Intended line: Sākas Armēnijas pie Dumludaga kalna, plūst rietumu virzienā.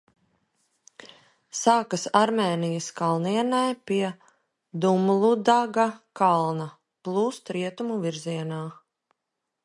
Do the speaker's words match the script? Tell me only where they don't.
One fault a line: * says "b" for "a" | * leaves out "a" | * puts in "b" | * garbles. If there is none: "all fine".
* puts in "kalnienē"